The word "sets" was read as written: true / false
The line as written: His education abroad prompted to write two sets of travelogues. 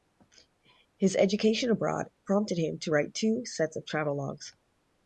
true